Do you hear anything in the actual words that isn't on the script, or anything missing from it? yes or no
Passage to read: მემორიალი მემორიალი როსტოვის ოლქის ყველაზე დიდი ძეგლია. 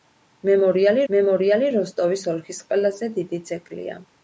no